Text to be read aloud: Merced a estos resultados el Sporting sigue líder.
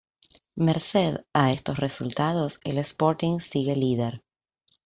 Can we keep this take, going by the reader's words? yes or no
yes